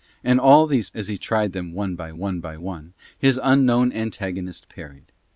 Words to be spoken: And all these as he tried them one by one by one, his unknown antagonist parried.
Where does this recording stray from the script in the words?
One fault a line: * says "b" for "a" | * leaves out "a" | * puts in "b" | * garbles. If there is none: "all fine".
all fine